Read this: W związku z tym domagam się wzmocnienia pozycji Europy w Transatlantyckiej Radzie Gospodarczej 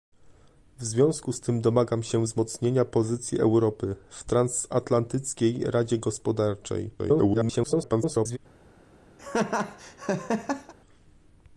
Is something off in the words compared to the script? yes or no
yes